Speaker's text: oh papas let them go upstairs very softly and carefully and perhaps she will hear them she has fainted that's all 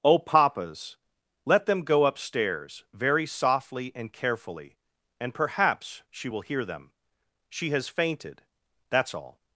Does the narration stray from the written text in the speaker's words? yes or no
no